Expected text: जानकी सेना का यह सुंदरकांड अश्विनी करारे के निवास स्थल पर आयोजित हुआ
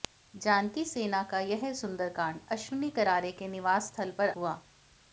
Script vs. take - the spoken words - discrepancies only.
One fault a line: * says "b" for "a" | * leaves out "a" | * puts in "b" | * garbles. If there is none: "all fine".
* leaves out "आयोजित"